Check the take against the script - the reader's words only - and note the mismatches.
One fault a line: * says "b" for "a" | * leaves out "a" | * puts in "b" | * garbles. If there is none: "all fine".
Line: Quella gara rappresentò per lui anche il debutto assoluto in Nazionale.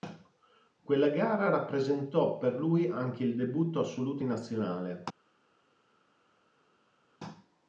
all fine